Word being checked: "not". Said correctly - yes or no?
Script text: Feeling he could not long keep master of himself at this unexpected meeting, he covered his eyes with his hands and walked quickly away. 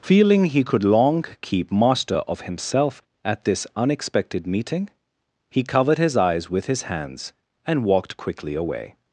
no